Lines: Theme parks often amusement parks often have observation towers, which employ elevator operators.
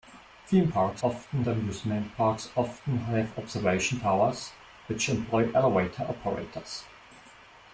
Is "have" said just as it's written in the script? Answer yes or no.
yes